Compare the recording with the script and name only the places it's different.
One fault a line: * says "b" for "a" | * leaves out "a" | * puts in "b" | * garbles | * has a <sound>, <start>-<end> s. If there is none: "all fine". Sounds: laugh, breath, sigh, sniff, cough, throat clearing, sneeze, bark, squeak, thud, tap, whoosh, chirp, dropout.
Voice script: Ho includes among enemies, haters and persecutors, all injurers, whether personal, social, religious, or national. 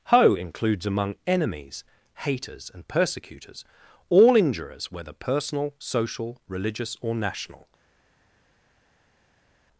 all fine